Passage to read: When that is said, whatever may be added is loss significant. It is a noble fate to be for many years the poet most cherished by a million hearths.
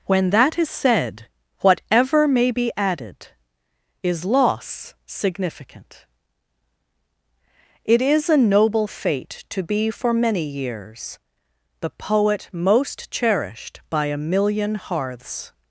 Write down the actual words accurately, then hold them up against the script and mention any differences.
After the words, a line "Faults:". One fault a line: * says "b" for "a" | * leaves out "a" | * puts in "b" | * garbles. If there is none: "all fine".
When that is said, whatever may be added is loss significant. It is a noble fate to be for many years the poet most cherished by a million hearths.
Faults:
all fine